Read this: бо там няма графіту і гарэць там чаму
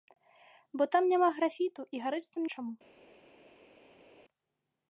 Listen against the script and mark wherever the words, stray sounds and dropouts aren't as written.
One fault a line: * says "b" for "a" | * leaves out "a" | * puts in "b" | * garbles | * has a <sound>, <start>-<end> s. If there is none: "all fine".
all fine